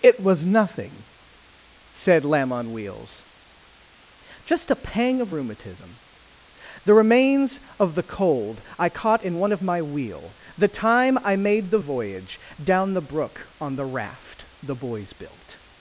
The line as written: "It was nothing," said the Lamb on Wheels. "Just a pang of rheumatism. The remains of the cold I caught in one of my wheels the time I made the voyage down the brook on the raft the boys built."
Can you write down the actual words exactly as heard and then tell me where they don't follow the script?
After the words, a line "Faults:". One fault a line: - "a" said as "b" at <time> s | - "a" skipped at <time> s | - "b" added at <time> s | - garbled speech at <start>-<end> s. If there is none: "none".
"It was nothing," said Lamb on Wheels. "Just a pang of rheumatism. The remains of the cold I caught in one of my wheel the time I made the voyage down the brook on the raft the boys built."
Faults:
- "the" skipped at 2.2 s
- "wheels" said as "wheel" at 9.8 s